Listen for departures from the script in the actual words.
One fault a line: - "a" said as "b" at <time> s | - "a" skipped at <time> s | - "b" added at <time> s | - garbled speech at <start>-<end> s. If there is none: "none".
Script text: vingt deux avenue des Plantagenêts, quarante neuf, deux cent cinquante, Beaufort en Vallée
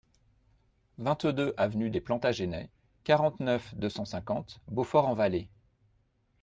none